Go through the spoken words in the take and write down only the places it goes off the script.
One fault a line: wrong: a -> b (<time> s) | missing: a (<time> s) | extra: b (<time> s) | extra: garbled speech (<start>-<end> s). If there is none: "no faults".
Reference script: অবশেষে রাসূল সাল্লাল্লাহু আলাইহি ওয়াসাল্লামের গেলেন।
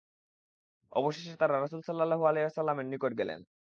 extra: তারা (1.4 s)
extra: নিকট (2.9 s)